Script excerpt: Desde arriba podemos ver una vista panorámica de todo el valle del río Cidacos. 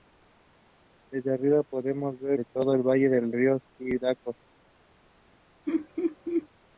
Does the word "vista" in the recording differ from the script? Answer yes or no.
yes